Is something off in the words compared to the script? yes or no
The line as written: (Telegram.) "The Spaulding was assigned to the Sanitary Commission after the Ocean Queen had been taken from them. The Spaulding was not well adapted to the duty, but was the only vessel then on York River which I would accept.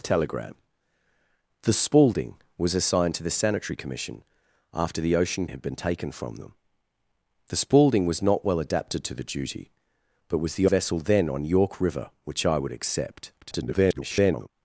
yes